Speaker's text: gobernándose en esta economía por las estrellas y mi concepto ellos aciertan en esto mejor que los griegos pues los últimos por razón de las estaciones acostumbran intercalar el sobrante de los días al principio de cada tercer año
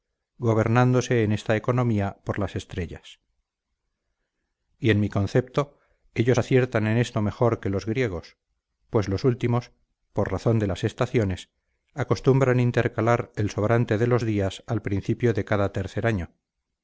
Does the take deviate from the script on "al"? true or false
false